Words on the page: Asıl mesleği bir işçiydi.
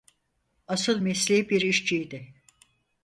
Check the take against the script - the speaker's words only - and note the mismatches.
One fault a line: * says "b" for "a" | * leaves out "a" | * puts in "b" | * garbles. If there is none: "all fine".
all fine